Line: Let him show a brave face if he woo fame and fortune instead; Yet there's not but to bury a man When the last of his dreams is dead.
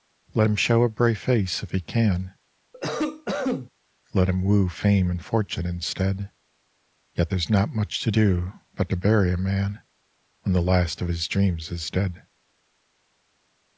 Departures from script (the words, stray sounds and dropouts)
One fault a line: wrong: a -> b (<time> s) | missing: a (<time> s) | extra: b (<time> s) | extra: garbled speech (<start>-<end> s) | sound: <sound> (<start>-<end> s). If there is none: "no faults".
extra: can Let him (1.8 s)
sound: cough (2.7-3.7 s)
extra: much to do (7.7 s)